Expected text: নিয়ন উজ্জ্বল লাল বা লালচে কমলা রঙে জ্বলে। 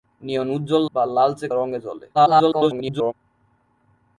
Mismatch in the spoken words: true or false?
true